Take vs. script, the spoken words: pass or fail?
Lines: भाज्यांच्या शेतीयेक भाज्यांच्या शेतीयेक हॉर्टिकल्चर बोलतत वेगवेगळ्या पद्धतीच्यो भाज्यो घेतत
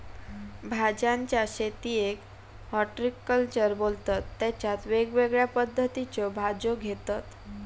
fail